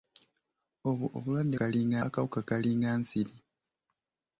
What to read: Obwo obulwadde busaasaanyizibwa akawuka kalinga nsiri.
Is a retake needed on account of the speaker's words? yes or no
yes